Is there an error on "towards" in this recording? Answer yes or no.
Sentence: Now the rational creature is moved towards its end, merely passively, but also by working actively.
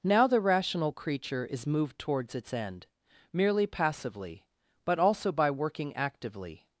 no